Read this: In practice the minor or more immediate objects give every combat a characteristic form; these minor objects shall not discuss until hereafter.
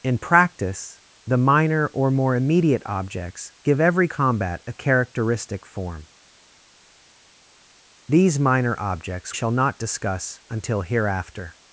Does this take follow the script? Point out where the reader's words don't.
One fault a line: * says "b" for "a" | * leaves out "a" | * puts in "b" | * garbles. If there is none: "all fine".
all fine